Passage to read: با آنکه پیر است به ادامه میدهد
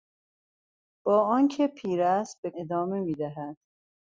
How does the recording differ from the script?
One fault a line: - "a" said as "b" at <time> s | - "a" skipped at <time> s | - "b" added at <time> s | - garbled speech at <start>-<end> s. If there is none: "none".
none